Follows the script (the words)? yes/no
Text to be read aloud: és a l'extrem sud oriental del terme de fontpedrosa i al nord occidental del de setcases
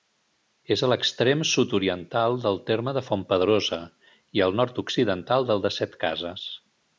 yes